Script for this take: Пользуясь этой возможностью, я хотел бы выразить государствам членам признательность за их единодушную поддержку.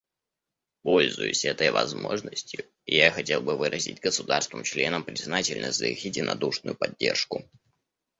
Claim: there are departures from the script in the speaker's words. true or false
false